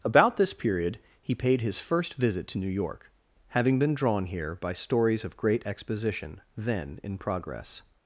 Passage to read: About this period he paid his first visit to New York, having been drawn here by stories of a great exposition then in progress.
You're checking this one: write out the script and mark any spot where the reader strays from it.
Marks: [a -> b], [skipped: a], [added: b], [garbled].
About this period he paid his first visit to New York, having been drawn here by stories of [skipped: a] great exposition then in progress.